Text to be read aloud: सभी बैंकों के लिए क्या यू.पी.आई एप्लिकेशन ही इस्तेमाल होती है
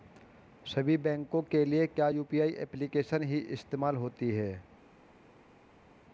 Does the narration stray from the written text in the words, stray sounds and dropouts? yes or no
no